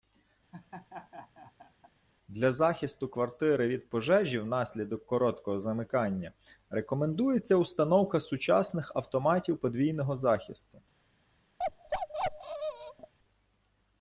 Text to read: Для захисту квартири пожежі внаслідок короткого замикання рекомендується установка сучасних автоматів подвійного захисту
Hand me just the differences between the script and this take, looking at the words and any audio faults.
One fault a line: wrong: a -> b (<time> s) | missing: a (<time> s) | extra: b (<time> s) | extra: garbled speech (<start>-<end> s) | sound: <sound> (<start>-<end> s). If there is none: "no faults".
sound: laugh (0.5-1.9 s)
extra: від (3.7 s)
sound: bark (11.6-13.1 s)